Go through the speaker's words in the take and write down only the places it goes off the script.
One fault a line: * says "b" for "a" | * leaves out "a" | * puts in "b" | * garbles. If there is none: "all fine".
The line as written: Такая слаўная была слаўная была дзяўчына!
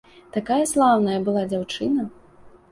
* leaves out "слаўная была"